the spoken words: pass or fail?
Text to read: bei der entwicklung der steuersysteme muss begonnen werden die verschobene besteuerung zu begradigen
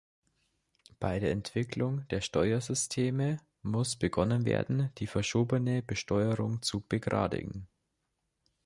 pass